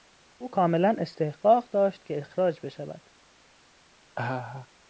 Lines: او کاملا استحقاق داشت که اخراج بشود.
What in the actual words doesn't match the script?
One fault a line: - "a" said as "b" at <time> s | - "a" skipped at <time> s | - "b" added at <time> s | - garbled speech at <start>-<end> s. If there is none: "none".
none